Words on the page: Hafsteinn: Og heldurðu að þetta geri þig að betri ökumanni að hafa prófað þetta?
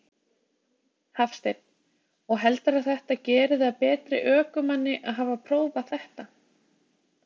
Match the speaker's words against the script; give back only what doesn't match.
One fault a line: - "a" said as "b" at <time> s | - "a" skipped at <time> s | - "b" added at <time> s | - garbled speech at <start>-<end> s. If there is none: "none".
none